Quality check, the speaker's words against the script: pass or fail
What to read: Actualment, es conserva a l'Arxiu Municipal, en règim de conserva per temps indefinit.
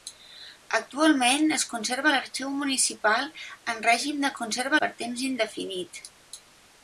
pass